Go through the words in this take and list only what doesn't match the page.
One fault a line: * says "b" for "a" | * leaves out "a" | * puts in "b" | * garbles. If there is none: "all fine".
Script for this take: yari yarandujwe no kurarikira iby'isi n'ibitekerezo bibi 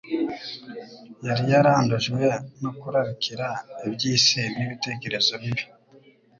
all fine